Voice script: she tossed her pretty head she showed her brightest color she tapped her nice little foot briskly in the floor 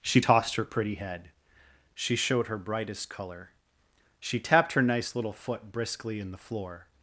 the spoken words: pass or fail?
pass